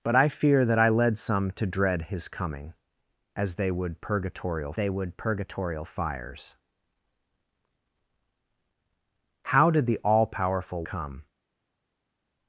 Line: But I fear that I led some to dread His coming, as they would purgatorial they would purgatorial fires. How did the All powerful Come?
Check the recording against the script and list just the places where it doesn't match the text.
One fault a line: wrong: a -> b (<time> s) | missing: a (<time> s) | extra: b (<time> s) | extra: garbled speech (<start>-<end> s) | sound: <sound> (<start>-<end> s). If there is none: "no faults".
no faults